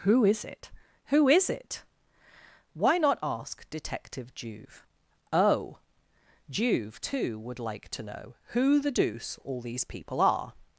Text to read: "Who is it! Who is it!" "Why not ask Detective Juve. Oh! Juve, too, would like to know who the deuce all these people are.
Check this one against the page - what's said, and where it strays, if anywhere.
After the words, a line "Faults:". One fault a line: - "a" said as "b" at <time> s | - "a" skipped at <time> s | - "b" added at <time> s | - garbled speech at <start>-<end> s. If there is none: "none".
"Who is it! Who is it!" "Why not ask Detective Juve. Oh! Juve, too, would like to know who the deuce all these people are.
Faults:
none